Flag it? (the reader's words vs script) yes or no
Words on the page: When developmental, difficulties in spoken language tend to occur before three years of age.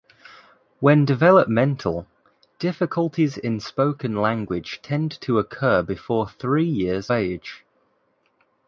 yes